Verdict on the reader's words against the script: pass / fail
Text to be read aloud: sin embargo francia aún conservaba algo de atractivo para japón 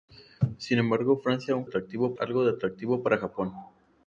fail